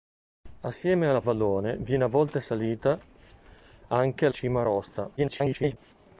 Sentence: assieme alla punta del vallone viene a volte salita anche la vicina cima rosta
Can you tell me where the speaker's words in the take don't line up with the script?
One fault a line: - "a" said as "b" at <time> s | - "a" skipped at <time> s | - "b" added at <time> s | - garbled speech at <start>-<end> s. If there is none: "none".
- "punta del" skipped at 1.2 s
- "la vicina" skipped at 4.3 s
- garbled speech at 5.2-5.8 s